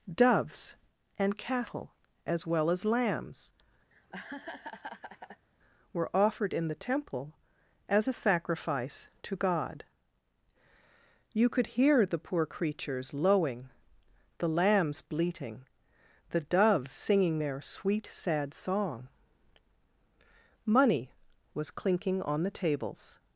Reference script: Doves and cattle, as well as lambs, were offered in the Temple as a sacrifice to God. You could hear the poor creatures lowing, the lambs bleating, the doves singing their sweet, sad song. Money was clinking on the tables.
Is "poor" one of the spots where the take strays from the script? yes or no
no